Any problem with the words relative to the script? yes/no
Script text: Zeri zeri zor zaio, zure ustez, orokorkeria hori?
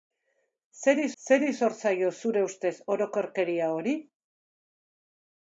no